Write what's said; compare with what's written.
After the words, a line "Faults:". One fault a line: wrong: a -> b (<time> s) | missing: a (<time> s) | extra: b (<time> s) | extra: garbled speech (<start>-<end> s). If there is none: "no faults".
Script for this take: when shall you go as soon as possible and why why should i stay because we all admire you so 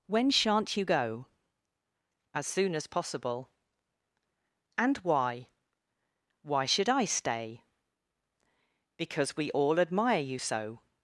when shan't you go as soon as possible and why why should i stay because we all admire you so
Faults:
wrong: shall -> shan't (0.3 s)